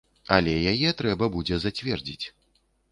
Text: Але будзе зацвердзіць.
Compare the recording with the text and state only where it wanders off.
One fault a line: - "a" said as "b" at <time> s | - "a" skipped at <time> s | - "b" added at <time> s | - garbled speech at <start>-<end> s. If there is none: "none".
- "яе трэба" added at 0.7 s